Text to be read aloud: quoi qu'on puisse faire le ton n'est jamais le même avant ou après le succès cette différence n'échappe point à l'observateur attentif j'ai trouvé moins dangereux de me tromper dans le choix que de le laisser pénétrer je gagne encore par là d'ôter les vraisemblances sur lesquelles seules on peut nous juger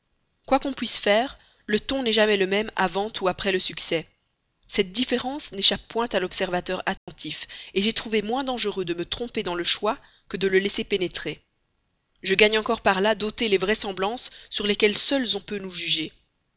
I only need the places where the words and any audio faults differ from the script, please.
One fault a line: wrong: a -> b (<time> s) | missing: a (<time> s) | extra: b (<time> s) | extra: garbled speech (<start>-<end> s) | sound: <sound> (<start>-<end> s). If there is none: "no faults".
sound: dropout (7.0-7.1 s)